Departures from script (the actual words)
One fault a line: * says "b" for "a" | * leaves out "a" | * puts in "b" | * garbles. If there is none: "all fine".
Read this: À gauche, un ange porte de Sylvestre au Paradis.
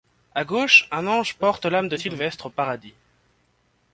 * puts in "l'âme"